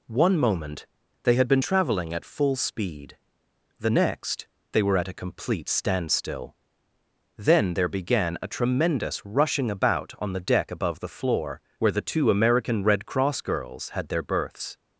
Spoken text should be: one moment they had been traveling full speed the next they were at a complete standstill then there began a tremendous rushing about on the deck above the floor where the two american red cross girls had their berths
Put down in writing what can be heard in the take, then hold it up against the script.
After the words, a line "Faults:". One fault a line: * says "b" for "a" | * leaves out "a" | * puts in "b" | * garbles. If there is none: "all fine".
one moment they had been traveling at full speed the next they were at a complete standstill then there began a tremendous rushing about on the deck above the floor where the two american red cross girls had their berths
Faults:
* puts in "at"